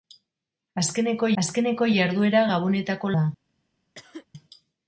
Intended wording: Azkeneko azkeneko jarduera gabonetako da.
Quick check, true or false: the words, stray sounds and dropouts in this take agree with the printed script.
false